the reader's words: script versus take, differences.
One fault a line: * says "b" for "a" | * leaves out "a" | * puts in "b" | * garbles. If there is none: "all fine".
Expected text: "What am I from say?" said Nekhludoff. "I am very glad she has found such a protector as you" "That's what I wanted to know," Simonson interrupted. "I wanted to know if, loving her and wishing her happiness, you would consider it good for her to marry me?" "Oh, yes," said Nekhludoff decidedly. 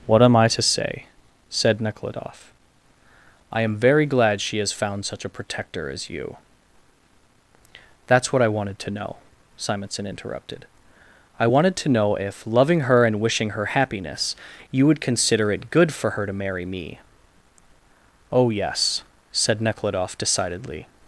* says "to" for "from"